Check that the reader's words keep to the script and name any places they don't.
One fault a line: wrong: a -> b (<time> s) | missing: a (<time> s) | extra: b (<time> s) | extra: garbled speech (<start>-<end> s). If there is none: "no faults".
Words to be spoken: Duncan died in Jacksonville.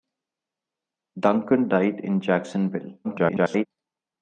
extra: garbled speech (3.0-3.7 s)